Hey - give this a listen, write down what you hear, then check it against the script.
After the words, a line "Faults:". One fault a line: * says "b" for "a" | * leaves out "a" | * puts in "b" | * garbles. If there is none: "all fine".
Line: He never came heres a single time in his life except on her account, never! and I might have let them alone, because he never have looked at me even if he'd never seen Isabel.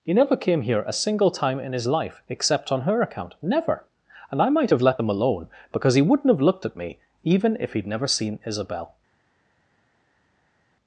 He never came here a single time in his life except on her account, never! and I might have let them alone, because he wouldn't have looked at me even if he'd never seen Isabel.
Faults:
* says "here" for "heres"
* says "wouldn't" for "never"